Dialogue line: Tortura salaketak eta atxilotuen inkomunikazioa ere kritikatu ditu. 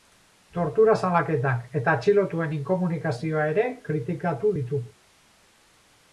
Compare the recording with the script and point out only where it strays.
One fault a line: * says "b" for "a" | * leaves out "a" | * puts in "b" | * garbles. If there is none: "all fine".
all fine